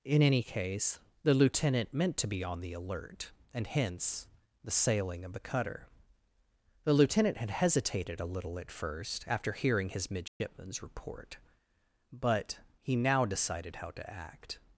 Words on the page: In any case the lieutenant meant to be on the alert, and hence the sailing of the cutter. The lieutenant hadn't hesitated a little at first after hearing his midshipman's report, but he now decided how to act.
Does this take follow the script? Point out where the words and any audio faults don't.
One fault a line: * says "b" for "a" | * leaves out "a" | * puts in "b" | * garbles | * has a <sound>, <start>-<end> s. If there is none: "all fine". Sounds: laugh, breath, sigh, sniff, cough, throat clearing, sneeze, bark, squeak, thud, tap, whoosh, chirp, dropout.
* says "had" for "hadn't"
* has a dropout, 10.3-10.4 s